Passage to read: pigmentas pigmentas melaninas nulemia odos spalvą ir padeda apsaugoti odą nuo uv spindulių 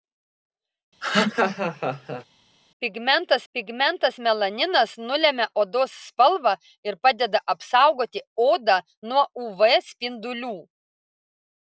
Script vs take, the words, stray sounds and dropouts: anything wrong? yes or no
yes